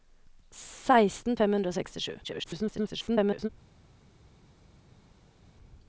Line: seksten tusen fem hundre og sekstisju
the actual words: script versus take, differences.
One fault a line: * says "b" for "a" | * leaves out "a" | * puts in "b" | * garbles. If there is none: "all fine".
* leaves out "tusen"
* garbles